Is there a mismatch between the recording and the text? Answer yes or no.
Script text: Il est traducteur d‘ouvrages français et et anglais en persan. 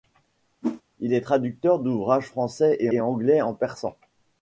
no